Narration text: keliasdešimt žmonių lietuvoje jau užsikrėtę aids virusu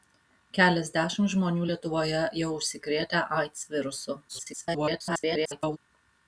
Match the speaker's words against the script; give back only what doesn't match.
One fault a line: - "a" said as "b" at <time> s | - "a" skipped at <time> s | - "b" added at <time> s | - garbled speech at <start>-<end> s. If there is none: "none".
- garbled speech at 4.3-5.8 s